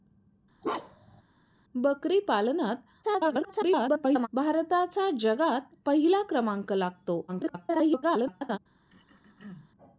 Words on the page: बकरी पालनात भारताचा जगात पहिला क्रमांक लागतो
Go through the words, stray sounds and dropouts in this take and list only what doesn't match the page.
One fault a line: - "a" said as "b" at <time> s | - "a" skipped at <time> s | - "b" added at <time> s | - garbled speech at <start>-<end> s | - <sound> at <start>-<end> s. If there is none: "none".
- bark at 0.6-1.2 s
- garbled speech at 3.0-4.3 s
- garbled speech at 7.3-8.6 s
- throat clearing at 8.9-9.7 s